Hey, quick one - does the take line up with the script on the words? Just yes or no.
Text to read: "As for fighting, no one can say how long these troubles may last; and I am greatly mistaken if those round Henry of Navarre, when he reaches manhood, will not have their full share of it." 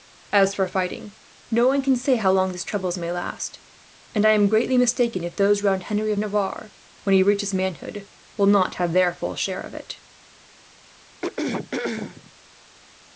yes